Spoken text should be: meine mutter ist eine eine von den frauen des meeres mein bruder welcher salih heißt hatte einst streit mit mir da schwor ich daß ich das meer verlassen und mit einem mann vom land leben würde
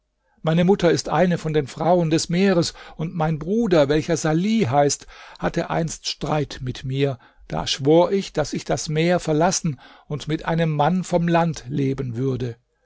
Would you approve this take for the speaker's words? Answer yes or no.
no